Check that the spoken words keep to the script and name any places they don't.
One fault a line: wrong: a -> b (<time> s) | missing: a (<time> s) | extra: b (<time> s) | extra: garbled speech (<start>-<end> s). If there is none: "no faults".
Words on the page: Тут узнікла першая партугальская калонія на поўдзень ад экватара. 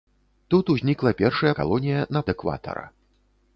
missing: партугальская (1.5 s)
missing: поўдзень (2.2 s)